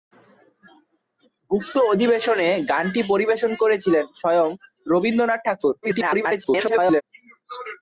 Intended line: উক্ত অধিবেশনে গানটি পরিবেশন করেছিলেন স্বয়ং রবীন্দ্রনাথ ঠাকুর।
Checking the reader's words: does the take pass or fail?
fail